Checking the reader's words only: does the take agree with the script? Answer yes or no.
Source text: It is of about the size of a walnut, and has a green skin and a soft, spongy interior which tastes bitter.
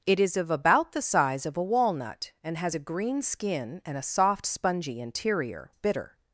no